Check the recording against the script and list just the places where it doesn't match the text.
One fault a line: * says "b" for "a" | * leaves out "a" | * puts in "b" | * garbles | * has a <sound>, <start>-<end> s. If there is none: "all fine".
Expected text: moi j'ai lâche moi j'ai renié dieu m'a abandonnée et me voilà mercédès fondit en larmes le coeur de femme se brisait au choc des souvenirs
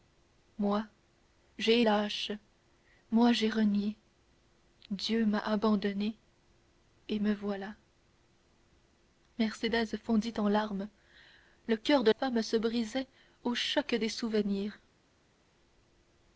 all fine